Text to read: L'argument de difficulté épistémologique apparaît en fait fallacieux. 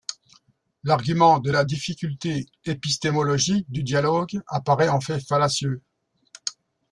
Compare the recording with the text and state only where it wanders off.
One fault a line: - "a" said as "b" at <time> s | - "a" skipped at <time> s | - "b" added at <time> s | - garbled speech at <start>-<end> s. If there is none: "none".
- "la" added at 1.5 s
- "du dialogue" added at 3.7 s